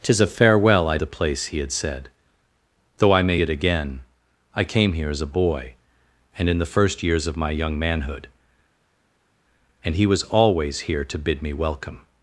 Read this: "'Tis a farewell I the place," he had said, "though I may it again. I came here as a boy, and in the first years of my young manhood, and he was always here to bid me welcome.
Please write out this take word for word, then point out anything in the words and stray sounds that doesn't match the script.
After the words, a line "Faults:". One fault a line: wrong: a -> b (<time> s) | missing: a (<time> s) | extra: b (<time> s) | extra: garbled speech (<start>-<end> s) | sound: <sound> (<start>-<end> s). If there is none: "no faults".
"'Tis a farewell I the place," he had said, "though I may it again. I came here as a boy, and in the first years of my young manhood, and he was always here to bid me welcome.
Faults:
no faults